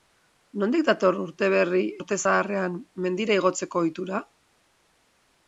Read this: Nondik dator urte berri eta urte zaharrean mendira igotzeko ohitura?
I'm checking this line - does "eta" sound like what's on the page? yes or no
no